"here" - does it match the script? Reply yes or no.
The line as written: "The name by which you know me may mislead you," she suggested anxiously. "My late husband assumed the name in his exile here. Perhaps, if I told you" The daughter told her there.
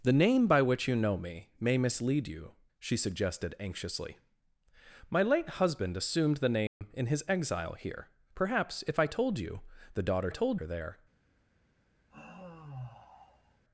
yes